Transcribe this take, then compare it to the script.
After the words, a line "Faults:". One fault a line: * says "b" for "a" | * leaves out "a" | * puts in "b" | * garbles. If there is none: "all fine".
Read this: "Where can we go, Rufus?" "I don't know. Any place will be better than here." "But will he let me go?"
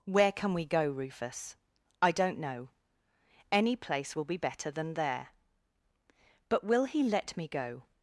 "Where can we go, Rufus?" "I don't know. Any place will be better than there." "But will he let me go?"
Faults:
* says "there" for "here"